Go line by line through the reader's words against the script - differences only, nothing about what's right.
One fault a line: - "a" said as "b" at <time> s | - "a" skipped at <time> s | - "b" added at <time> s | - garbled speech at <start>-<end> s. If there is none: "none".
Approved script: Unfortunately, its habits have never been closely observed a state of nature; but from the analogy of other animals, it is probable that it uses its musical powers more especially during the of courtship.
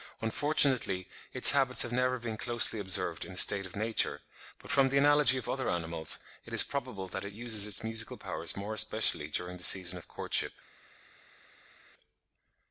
- "in" added at 3.2 s
- "season" added at 9.6 s